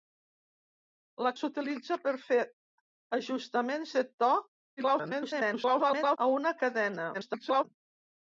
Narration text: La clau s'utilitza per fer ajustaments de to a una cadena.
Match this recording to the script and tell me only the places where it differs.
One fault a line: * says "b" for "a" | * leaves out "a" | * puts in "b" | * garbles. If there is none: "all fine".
* leaves out "clau"
* garbles
* garbles